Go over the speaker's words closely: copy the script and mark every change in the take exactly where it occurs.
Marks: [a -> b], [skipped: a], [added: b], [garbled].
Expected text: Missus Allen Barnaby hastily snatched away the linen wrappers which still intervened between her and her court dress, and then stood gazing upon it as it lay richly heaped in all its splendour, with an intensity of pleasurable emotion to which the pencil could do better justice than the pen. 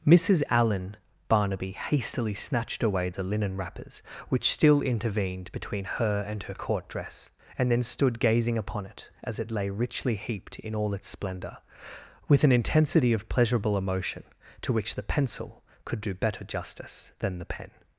Missus Allen Barnaby hastily snatched away the linen wrappers which still intervened between her and her court dress, and then stood gazing upon it as it lay richly heaped in all its splendour, with an intensity of pleasurable emotion to which the pencil could do better justice than the pen.